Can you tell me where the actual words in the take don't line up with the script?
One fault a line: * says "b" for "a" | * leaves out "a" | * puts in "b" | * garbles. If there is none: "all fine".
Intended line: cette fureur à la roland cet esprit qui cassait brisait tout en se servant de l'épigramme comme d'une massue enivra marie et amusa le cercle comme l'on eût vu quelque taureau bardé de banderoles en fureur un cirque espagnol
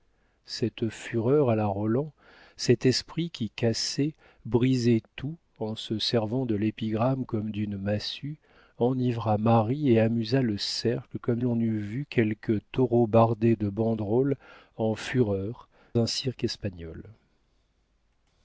all fine